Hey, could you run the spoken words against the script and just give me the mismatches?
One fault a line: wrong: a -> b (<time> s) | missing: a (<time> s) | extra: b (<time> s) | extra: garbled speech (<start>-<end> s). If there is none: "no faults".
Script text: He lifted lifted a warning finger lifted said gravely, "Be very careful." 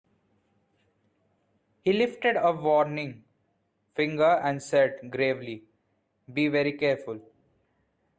missing: lifted (2.4 s)
wrong: lifted -> and (4.4 s)